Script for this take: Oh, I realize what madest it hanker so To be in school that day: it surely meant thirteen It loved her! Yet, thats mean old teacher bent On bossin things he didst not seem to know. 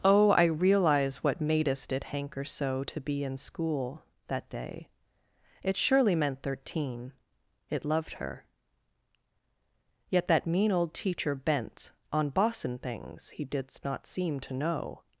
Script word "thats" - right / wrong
wrong